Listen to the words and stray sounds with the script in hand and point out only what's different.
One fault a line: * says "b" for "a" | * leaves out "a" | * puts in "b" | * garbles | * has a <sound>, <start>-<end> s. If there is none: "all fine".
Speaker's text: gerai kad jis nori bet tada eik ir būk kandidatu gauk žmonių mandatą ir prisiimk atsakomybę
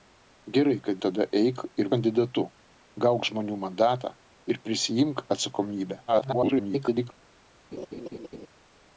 * leaves out "jis nori bet"
* leaves out "būk"
* garbles
* has a laugh, 7.7-8.5 s